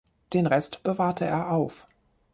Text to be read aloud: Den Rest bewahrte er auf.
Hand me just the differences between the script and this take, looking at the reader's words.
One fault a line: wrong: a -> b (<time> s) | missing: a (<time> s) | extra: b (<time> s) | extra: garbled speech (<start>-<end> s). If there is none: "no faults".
no faults